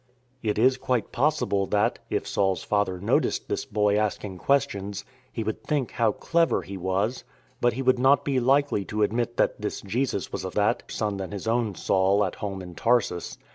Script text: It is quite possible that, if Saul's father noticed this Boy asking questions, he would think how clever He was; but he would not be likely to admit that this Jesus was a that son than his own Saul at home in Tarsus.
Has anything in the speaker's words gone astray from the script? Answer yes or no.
no